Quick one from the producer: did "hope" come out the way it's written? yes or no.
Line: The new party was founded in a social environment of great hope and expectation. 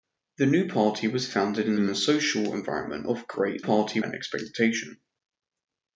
no